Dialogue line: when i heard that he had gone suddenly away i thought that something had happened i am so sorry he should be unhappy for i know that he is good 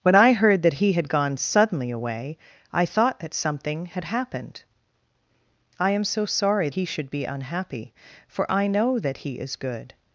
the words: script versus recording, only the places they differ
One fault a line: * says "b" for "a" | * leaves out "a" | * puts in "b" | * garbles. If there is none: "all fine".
all fine